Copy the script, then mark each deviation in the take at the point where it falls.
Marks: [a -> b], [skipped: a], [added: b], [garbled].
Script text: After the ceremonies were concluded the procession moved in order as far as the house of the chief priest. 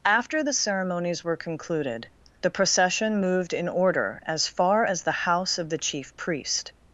After the ceremonies were concluded the procession moved in order as far as the house of the chief priest.